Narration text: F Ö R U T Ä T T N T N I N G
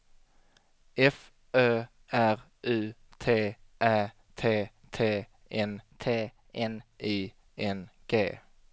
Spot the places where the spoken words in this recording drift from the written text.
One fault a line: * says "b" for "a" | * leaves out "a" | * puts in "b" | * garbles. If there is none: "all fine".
all fine